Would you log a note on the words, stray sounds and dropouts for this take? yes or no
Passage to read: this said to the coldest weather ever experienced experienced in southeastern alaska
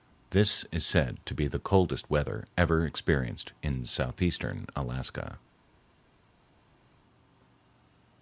yes